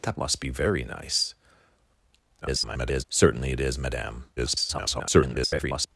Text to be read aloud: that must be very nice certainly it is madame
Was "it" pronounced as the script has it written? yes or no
yes